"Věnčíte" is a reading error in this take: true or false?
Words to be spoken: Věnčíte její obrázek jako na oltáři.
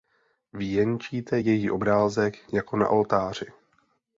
false